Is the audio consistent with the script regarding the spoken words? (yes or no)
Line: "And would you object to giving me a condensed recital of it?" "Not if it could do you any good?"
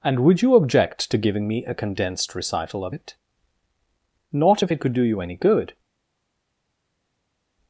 yes